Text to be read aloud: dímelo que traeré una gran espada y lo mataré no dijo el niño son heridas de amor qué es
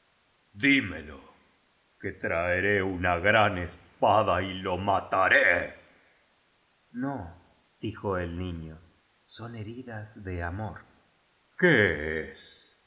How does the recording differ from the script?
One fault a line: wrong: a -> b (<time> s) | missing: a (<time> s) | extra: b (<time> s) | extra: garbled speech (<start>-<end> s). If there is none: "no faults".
no faults